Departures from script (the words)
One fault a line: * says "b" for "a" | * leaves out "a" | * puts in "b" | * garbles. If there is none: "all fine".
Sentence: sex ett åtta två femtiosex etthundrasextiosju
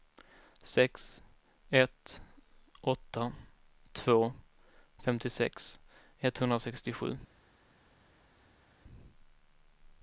all fine